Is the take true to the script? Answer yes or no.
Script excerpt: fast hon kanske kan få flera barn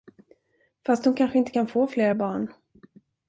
no